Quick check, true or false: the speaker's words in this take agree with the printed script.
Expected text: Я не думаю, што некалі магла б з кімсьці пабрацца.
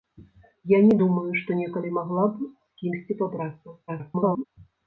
false